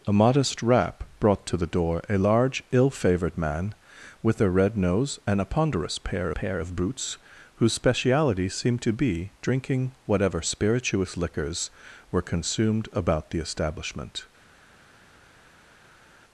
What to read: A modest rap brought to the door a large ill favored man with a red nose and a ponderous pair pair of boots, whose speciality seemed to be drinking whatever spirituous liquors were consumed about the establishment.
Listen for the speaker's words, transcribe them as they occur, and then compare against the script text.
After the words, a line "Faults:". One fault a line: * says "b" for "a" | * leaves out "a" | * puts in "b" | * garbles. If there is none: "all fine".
A modest rap brought to the door a large ill favored man with a red nose and a ponderous pair pair of boots, whose speciality seemed to be drinking whatever spirituous liquors were consumed about the establishment.
Faults:
all fine